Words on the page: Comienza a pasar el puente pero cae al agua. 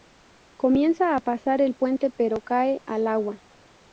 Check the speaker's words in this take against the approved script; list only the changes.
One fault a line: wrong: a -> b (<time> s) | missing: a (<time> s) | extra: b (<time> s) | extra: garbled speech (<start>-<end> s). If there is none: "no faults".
no faults